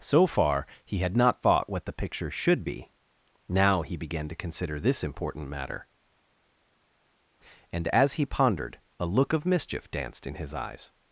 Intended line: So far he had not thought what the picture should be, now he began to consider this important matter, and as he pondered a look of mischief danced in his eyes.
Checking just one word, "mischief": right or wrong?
right